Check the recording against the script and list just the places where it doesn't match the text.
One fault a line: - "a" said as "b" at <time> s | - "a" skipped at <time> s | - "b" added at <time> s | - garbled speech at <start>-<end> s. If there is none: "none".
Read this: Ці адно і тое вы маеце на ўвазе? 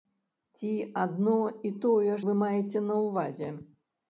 none